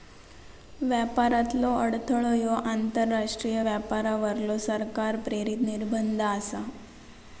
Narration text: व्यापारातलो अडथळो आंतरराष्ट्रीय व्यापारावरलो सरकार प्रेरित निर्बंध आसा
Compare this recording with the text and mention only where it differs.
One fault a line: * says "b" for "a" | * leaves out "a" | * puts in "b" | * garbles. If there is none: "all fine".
* puts in "ह्यो"